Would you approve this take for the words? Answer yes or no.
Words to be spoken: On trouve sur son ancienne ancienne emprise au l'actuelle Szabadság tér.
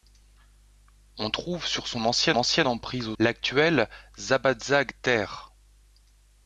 yes